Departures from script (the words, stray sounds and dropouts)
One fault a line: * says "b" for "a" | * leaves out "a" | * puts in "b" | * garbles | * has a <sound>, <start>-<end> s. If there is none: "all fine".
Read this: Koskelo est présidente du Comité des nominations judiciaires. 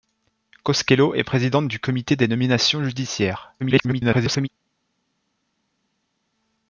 * garbles